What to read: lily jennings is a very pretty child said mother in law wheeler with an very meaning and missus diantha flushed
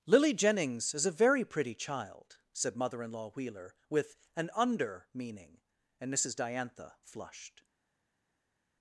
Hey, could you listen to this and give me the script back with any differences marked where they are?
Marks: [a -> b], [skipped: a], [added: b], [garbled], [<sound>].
lily jennings is a very pretty child said mother in law wheeler with an [very -> under] meaning and missus diantha flushed